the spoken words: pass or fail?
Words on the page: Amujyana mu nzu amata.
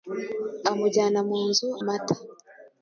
pass